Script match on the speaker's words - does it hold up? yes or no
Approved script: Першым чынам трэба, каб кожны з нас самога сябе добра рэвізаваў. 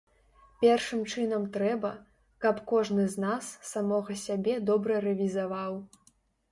yes